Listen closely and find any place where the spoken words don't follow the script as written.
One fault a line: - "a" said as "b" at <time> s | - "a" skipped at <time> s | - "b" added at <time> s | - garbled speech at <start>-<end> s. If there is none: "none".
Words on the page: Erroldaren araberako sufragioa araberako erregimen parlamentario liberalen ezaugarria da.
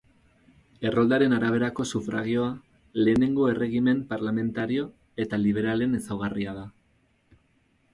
- "araberako" said as "lehenengo" at 3.0 s
- "eta" added at 5.3 s